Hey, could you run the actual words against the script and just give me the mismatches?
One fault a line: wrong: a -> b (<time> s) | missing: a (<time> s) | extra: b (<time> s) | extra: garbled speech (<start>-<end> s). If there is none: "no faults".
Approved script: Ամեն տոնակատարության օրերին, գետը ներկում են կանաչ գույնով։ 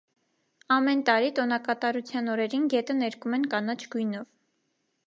extra: տարի (1.1 s)